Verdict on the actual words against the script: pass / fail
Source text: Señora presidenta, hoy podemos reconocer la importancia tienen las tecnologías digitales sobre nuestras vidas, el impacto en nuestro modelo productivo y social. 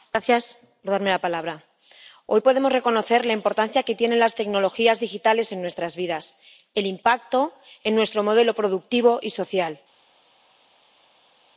fail